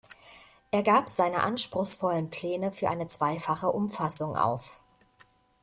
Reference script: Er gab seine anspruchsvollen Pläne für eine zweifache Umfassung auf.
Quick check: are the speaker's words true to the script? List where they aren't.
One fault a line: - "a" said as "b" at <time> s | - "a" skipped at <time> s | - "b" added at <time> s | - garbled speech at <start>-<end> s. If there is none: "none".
none